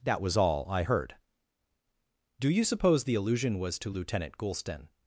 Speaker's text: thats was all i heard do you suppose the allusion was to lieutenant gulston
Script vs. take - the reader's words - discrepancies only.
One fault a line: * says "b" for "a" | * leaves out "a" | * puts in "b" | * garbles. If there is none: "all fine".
* says "that" for "thats"